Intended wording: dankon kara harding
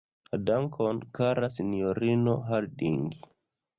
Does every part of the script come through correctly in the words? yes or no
no